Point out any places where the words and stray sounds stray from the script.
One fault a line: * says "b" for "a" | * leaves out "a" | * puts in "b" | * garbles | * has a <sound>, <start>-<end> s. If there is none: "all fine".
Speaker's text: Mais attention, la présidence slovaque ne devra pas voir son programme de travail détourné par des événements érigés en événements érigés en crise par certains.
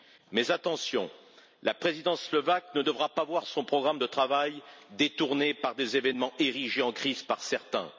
* leaves out "événements érigés en"